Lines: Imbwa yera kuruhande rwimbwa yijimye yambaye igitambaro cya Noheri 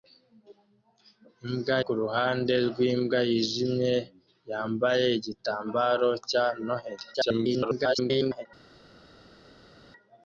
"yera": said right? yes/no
no